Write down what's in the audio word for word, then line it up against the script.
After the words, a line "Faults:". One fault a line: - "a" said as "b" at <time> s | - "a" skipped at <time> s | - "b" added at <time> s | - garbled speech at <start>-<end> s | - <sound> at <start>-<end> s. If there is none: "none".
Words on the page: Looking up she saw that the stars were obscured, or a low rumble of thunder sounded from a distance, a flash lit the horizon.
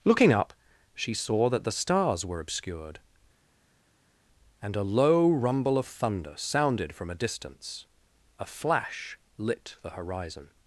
Looking up she saw that the stars were obscured, and a low rumble of thunder sounded from a distance, a flash lit the horizon.
Faults:
- "or" said as "and" at 4.6 s